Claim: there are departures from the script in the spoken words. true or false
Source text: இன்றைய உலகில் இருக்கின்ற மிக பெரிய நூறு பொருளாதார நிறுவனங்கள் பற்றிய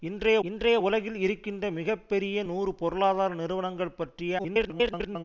true